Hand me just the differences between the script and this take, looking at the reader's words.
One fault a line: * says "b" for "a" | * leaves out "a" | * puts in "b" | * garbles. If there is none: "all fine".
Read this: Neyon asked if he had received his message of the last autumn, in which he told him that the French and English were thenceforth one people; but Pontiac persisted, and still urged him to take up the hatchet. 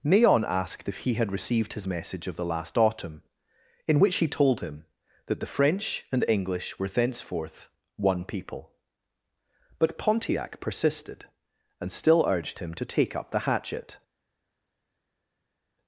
all fine